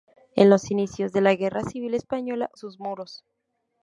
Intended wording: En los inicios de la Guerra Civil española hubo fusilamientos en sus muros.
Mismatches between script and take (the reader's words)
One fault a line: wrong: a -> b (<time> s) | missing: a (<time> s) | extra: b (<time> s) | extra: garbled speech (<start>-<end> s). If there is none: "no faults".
missing: hubo fusilamientos en (2.5 s)